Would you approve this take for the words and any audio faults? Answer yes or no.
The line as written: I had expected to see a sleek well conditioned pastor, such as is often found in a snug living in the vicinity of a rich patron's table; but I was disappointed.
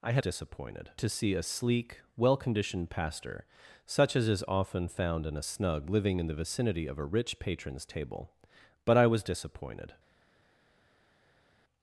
no